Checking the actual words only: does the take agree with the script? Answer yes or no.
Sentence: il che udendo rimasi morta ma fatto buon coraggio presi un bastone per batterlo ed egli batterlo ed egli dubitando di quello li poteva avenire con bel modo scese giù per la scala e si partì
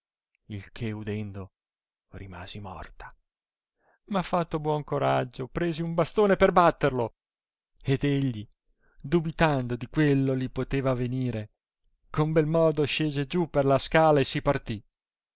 no